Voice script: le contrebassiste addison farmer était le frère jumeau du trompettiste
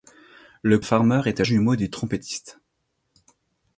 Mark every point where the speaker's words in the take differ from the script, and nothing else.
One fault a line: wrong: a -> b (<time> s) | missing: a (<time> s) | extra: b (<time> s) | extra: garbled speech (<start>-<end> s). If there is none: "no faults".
missing: contrebassiste addison (0.8 s)
missing: le frère (1.4 s)